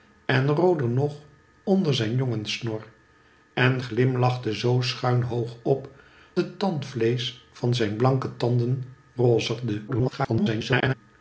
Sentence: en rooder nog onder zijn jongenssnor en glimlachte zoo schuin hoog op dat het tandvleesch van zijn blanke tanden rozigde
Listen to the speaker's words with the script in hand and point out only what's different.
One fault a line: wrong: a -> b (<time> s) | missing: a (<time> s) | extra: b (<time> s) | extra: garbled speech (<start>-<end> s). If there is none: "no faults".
missing: dat (5.9 s)
extra: garbled speech (9.9-10.9 s)